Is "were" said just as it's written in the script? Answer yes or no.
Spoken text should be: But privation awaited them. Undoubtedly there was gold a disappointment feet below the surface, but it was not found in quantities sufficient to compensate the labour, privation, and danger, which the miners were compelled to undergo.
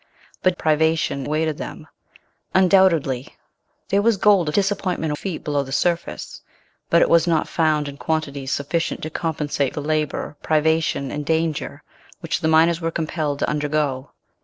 yes